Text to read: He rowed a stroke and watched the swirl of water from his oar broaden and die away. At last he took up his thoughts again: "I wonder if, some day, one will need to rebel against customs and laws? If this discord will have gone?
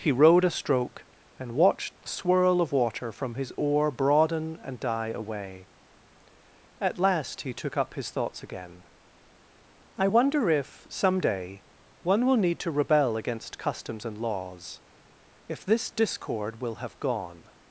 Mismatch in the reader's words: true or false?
false